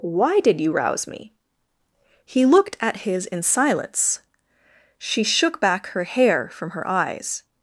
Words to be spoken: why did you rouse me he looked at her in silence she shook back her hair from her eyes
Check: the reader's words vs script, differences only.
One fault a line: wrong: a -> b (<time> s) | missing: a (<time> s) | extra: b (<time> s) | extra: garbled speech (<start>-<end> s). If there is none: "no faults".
wrong: her -> his (3.0 s)